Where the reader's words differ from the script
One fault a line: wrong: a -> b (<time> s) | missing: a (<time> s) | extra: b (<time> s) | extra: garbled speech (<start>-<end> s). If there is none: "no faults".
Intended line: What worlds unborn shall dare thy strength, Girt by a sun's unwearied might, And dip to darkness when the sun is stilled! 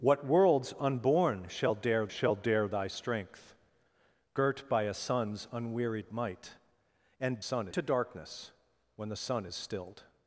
extra: shall dare (2.1 s)
wrong: dip -> sun (7.4 s)